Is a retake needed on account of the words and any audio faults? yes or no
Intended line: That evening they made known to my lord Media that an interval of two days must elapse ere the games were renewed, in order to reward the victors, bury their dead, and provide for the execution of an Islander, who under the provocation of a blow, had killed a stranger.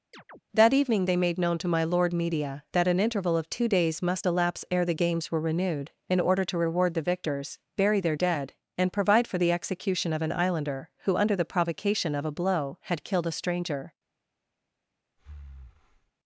yes